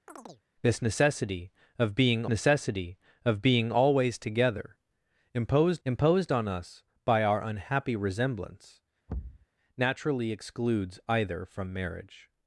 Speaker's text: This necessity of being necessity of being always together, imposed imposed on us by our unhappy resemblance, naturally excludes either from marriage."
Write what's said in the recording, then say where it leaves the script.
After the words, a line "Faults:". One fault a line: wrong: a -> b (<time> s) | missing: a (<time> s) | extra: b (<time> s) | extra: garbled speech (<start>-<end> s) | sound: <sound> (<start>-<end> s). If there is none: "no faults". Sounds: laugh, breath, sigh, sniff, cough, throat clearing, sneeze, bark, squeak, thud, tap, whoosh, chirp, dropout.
This necessity of being necessity of being always together, imposed imposed on us by our unhappy resemblance, naturally excludes either from marriage."
Faults:
sound: chirp (0.1-0.4 s)
sound: thud (9.1-9.5 s)